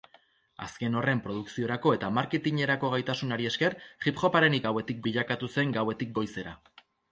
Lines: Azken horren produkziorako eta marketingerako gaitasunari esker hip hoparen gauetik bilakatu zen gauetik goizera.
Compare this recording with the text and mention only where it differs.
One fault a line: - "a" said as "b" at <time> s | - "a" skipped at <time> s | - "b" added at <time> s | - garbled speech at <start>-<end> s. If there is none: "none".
none